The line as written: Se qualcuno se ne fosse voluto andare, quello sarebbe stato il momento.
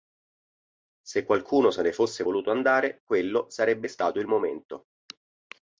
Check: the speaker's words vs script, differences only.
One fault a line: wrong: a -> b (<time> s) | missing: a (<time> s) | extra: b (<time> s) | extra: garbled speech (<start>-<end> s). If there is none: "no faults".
no faults